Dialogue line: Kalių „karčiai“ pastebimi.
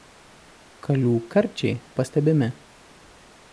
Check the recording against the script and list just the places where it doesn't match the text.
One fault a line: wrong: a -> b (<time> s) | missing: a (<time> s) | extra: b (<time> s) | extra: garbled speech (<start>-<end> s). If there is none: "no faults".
no faults